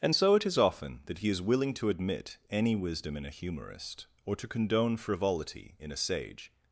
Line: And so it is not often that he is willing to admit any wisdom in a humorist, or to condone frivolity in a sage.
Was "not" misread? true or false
true